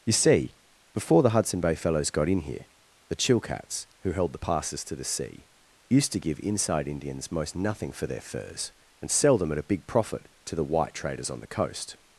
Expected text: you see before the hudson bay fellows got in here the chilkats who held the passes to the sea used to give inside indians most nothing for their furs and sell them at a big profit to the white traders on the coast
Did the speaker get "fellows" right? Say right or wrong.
right